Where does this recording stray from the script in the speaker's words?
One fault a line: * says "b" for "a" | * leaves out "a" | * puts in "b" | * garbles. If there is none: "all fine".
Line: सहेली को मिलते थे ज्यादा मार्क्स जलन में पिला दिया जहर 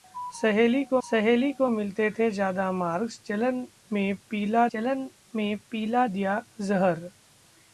* puts in "सहेली को"
* puts in "जलन में पिला"